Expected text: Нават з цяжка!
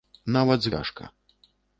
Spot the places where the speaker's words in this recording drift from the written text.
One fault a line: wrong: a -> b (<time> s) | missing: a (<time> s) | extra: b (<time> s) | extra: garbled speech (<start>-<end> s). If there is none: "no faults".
no faults